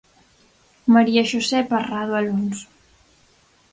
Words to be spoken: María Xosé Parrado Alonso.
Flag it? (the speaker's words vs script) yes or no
no